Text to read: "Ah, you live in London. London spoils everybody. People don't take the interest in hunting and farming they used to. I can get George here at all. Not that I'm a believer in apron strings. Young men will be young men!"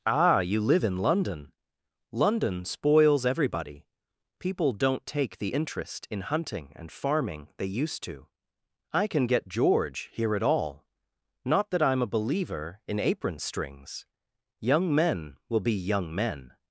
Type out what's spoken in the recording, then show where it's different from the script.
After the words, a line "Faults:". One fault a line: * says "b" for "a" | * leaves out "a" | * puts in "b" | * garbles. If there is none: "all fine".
"Ah, you live in London. London spoils everybody. People don't take the interest in hunting and farming they used to. I can get George here at all. Not that I'm a believer in apron strings. Young men will be young men!"
Faults:
all fine